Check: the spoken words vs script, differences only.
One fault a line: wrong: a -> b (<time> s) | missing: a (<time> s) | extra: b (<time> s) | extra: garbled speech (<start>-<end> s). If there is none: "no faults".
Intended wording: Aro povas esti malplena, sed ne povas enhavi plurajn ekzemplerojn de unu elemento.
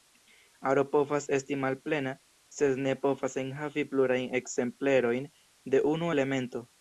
no faults